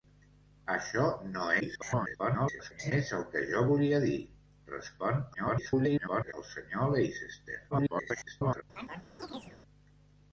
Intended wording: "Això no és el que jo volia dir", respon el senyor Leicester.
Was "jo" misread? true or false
false